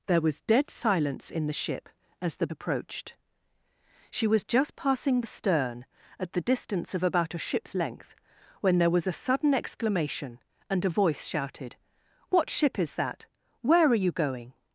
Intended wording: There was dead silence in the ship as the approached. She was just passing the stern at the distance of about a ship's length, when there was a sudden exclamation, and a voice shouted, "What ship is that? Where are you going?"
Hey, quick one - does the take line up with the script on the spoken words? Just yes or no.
yes